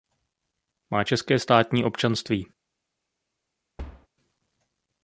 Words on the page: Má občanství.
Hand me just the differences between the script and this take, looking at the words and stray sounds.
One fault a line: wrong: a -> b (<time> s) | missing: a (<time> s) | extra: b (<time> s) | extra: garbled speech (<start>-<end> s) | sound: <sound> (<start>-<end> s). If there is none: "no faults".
extra: české státní (1.0 s)
sound: thud (3.8-4.1 s)